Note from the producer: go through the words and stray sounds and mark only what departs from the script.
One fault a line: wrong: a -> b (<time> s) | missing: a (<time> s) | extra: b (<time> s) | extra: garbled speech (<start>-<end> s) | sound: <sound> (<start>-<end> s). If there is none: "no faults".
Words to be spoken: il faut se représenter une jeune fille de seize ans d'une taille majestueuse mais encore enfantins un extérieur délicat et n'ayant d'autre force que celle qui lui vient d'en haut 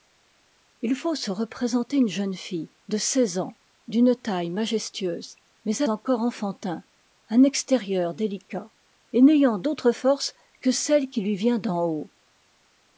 no faults